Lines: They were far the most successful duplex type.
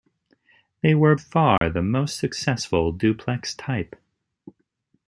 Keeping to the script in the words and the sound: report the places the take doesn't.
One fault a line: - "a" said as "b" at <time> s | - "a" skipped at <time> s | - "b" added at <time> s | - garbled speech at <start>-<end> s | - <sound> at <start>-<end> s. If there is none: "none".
- dropout at 1.6-1.6 s